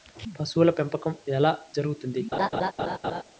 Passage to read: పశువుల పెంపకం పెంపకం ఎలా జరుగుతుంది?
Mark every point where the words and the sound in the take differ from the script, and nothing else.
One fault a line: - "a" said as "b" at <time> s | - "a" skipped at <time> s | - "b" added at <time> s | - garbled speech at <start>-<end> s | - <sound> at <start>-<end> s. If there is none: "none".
- "పెంపకం" skipped at 1.1 s
- laugh at 2.3-3.2 s